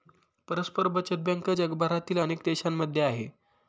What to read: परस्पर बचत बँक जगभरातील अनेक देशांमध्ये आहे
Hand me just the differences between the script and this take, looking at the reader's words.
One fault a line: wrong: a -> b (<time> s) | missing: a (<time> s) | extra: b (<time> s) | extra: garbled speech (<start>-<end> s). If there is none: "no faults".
no faults